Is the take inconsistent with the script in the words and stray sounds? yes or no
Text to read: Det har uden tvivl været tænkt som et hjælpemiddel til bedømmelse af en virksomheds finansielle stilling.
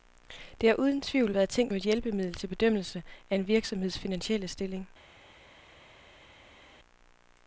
yes